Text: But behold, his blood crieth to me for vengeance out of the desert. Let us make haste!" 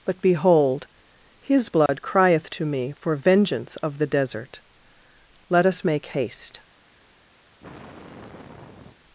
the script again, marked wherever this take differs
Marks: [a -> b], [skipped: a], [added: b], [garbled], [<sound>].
But behold, his blood [dropout] crieth to me for vengeance [skipped: out] of the desert. Let us make haste!" [sigh]